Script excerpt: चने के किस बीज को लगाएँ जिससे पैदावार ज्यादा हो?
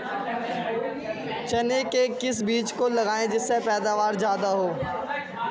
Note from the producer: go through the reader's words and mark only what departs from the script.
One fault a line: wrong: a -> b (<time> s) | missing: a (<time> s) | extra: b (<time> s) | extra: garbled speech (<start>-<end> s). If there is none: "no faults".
no faults